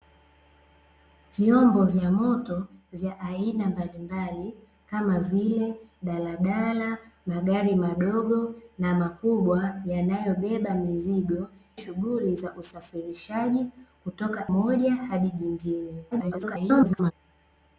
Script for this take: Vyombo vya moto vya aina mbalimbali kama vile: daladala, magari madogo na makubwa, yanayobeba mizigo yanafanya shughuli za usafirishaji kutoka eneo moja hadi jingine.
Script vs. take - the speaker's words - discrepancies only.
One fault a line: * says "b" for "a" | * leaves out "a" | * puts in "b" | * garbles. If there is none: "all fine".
* leaves out "yanafanya"
* leaves out "eneo"
* garbles